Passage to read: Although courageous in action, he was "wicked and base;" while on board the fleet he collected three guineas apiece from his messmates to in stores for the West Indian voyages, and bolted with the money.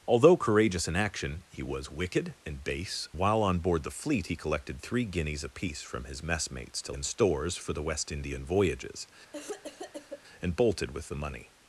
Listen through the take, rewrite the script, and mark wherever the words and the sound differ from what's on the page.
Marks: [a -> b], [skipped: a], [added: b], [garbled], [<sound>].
Although courageous in action, he was "wicked and base;" while on board the fleet he collected three guineas apiece from his messmates to in stores for the West Indian voyages, [cough] and bolted with the money.